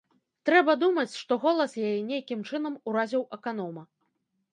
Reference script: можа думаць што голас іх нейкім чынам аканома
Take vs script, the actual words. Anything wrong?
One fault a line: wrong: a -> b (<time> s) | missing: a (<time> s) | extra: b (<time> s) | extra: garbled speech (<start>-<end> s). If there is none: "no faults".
wrong: можа -> трэба (0.5 s)
wrong: іх -> яе (1.9 s)
extra: уразіў (2.9 s)